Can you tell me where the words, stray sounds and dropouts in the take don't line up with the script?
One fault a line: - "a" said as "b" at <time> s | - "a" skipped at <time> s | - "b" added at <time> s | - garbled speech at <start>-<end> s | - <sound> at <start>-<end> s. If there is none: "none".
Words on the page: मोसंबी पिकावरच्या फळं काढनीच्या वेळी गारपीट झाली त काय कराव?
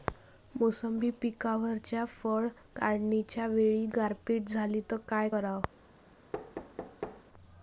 - thud at 6.3-7.2 s